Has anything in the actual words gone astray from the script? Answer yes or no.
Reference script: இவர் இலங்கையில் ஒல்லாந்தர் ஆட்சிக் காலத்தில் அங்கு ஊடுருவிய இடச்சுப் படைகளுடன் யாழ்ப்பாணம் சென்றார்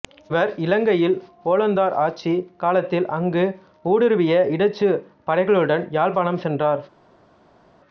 no